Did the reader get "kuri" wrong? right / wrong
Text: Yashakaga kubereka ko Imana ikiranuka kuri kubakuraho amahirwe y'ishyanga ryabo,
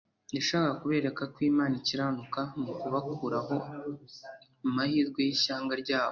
wrong